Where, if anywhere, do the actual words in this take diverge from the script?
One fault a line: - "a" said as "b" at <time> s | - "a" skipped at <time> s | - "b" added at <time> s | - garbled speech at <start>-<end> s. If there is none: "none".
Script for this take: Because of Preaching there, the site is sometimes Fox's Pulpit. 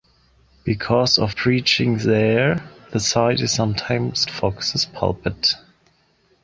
none